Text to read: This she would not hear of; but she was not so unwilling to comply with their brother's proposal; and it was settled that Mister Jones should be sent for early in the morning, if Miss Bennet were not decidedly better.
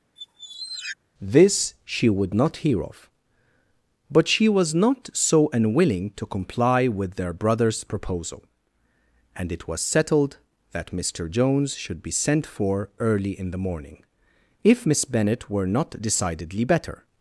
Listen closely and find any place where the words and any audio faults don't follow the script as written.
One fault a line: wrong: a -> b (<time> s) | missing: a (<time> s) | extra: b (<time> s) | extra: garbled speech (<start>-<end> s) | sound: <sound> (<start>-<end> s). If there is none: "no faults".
sound: squeak (0.2-1.0 s)